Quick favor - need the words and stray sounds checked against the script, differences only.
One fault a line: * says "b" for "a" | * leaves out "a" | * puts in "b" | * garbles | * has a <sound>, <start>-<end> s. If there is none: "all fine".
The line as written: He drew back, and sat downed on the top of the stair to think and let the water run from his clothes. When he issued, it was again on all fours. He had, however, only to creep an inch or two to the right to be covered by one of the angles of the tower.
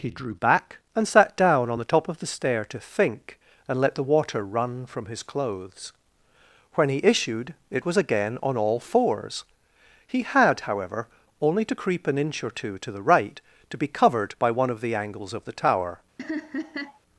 * says "down" for "downed"
* has a laugh, 16.2-17.0 s